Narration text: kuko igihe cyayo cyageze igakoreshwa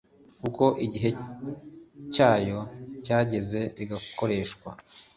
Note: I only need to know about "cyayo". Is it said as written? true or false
true